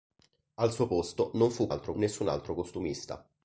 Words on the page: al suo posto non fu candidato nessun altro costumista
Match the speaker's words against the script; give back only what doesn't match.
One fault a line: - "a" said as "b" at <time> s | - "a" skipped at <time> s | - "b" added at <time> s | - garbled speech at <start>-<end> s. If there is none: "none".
- "candidato" said as "altro" at 1.7 s